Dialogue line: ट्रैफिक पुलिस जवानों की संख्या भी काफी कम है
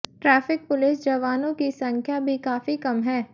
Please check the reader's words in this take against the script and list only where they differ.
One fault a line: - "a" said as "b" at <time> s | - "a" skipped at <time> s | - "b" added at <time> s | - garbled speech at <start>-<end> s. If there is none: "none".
none